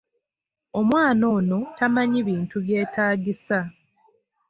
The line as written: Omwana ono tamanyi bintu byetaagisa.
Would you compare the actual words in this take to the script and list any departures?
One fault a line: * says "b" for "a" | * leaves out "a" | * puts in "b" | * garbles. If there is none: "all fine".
all fine